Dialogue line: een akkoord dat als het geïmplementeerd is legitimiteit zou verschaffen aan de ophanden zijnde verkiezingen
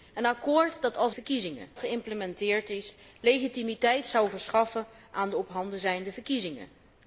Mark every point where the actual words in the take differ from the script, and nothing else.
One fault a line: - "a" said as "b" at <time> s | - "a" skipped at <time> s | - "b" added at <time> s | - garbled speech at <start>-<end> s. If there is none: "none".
- "het" said as "verkiezingen" at 1.1 s